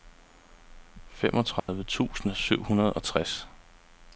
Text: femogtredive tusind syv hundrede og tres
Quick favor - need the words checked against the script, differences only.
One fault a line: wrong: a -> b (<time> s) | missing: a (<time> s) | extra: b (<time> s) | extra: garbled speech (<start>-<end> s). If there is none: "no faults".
no faults